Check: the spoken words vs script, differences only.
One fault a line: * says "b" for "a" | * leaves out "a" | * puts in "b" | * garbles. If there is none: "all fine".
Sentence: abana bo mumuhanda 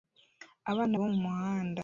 all fine